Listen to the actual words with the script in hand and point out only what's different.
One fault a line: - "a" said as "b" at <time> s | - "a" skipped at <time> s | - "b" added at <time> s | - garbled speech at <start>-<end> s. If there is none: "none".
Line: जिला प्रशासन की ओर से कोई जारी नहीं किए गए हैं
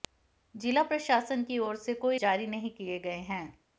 none